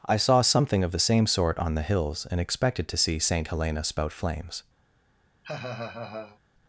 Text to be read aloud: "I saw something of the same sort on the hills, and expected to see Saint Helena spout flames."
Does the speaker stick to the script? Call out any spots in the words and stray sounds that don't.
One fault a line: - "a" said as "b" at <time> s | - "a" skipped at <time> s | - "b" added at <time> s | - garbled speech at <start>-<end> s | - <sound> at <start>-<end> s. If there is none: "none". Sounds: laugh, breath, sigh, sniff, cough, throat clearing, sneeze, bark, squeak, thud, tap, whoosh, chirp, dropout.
- laugh at 5.4-6.4 s